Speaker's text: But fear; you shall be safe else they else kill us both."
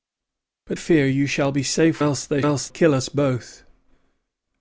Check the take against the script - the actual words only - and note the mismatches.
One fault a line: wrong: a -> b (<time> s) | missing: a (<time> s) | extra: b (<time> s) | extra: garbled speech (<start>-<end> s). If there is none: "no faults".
no faults